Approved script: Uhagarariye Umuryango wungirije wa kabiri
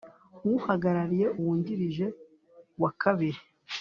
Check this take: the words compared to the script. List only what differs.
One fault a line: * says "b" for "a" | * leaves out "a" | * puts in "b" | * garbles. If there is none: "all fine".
* leaves out "Umuryango"